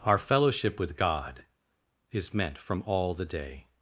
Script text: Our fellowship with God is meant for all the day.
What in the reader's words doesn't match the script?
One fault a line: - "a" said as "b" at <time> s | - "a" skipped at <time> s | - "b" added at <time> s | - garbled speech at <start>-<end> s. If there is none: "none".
- "for" said as "from" at 2.6 s